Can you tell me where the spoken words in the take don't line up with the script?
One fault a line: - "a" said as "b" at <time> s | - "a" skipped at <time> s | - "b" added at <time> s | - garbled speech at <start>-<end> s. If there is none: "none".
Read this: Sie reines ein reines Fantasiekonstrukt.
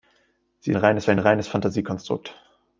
none